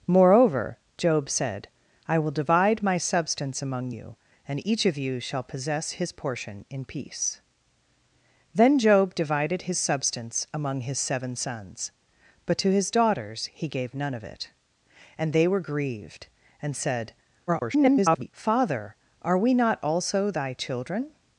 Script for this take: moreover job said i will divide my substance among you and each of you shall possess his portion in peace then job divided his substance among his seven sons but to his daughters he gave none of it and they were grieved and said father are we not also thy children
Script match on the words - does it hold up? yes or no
no